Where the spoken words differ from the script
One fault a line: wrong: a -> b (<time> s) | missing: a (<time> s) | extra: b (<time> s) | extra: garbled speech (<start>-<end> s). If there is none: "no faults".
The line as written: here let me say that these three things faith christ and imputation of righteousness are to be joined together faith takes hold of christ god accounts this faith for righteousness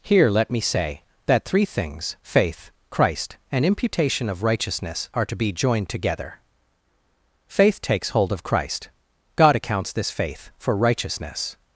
missing: these (1.4 s)